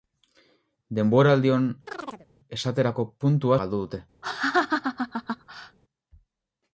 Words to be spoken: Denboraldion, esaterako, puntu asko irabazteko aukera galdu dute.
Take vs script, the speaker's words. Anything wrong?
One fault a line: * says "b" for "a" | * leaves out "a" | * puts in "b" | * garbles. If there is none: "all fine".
* leaves out "asko irabazteko aukera"